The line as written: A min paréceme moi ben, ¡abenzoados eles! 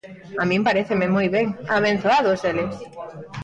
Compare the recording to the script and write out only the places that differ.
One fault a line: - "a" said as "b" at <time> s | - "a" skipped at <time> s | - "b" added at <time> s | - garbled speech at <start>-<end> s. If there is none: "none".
none